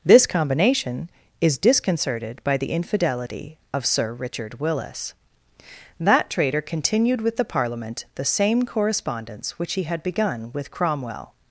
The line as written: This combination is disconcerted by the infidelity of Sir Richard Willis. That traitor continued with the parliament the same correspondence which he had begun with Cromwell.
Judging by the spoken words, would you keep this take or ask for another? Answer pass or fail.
pass